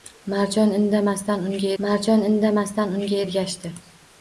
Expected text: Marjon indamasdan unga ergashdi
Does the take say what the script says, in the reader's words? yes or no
no